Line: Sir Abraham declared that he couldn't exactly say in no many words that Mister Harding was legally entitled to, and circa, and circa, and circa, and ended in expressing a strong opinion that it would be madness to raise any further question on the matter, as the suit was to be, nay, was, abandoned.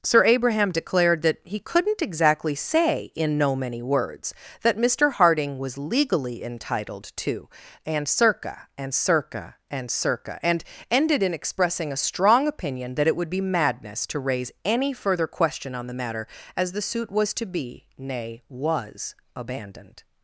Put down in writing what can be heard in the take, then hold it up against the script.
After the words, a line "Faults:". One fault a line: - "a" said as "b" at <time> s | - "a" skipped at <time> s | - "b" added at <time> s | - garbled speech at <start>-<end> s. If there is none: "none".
Sir Abraham declared that he couldn't exactly say in no many words that Mister Harding was legally entitled to, and circa, and circa, and circa, and ended in expressing a strong opinion that it would be madness to raise any further question on the matter, as the suit was to be, nay, was, abandoned.
Faults:
none